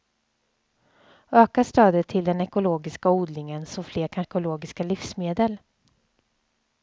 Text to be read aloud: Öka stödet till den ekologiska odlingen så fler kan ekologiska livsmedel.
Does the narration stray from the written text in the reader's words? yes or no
no